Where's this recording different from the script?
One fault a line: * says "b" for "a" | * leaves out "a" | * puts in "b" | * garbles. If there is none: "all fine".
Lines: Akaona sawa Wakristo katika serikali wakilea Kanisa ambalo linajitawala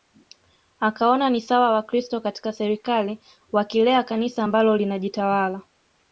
* puts in "ni"